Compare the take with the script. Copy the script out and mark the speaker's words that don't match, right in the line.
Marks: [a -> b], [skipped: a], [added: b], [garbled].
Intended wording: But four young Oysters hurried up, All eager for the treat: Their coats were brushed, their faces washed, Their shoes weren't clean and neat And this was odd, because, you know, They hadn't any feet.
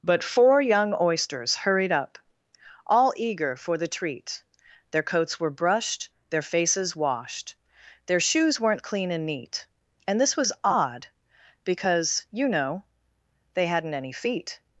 But four young Oysters hurried up, All eager for the treat: Their coats were brushed, their faces washed, Their shoes weren't clean and neat And this was odd, because, you know, They hadn't any feet.